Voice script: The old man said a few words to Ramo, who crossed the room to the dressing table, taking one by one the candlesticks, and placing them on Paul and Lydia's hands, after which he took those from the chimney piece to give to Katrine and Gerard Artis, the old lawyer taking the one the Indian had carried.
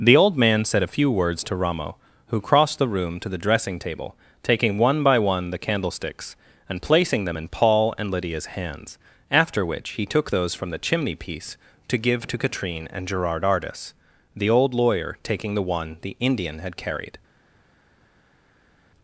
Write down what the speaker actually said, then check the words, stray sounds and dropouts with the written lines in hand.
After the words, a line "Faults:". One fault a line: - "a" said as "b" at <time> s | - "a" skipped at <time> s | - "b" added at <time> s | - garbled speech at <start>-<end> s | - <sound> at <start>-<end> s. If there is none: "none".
The old man said a few words to Ramo, who crossed the room to the dressing table, taking one by one the candlesticks, and placing them in Paul and Lydia's hands, after which he took those from the chimney piece to give to Katrine and Gerard Artis, the old lawyer taking the one the Indian had carried.
Faults:
- "on" said as "in" at 7.4 s